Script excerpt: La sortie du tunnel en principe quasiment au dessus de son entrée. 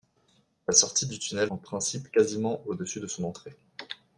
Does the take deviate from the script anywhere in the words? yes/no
no